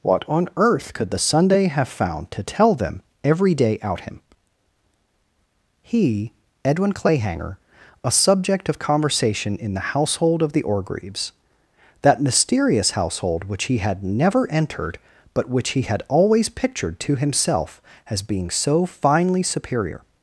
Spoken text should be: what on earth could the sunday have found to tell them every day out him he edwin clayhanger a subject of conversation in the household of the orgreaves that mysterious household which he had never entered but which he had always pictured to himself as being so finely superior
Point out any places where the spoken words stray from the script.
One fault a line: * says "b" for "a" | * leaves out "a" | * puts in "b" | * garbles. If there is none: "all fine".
all fine